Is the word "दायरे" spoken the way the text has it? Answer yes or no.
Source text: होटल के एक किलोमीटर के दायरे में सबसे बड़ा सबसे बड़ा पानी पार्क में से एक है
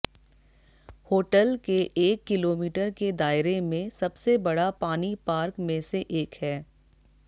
yes